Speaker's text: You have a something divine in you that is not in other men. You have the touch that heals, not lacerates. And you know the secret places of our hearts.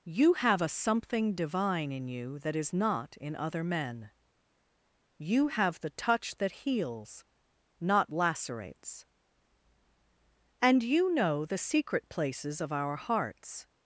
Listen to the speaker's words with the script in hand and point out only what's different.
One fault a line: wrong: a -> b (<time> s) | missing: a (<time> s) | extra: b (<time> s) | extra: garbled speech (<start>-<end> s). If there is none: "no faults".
no faults